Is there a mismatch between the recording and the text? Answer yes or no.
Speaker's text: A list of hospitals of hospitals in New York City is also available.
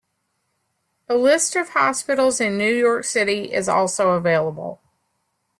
yes